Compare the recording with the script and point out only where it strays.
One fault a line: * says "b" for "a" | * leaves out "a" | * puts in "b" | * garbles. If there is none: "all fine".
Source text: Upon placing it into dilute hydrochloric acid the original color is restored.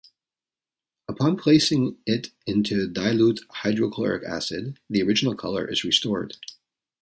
all fine